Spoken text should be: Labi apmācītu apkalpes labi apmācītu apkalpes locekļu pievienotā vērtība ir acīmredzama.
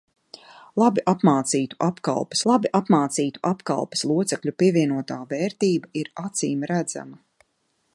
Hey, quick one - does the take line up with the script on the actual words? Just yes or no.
yes